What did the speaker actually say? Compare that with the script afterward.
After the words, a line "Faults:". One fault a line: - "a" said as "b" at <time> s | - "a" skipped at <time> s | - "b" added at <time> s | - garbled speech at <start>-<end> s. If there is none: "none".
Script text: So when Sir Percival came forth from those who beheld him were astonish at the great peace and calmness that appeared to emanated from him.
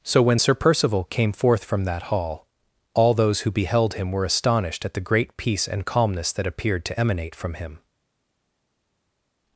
So when Sir Percival came forth from that hall, all those who beheld him were astonished at the great peace and calmness that appeared to emanate from him.
Faults:
- "that hall all" added at 1.8 s
- "astonish" said as "astonished" at 4.3 s
- "emanated" said as "emanate" at 7.0 s